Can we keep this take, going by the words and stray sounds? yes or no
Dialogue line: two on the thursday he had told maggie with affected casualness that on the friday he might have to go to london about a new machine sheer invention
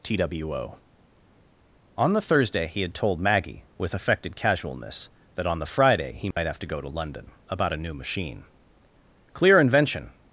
no